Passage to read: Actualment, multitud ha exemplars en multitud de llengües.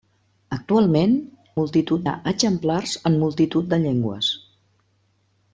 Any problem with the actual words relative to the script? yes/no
no